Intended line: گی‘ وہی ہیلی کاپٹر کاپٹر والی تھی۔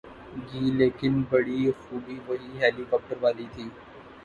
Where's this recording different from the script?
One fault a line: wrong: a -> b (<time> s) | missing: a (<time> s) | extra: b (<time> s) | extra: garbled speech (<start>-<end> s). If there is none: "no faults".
extra: لیکن بڑی خوبی (0.8 s)
missing: کاپٹر (3.2 s)